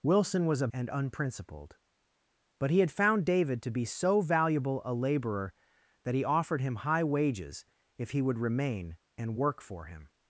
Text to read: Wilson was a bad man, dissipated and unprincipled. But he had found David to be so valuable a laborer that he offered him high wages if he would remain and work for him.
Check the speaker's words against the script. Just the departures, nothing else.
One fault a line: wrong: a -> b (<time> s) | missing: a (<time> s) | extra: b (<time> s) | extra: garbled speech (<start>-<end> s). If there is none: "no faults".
missing: bad man dissipated (0.7 s)